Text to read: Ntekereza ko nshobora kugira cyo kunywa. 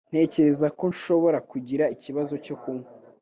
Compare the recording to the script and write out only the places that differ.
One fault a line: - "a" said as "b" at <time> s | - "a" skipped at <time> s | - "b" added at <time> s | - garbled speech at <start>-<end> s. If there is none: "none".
- "ikibazo" added at 1.9 s